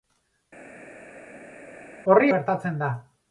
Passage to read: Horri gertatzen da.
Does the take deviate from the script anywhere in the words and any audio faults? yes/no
no